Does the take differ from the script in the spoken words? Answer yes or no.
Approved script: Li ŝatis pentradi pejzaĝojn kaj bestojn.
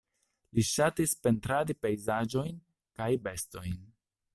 no